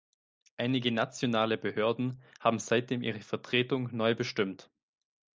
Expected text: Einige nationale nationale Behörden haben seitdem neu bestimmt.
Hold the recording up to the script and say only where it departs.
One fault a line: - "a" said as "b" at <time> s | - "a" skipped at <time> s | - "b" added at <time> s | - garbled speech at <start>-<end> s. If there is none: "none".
- "nationale" skipped at 1.6 s
- "ihre Vertretung" added at 3.0 s